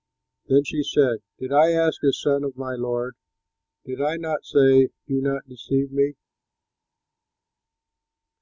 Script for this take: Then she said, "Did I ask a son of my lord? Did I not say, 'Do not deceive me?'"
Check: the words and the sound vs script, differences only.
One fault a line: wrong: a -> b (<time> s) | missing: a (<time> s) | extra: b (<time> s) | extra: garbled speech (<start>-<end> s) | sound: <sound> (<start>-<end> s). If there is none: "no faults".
no faults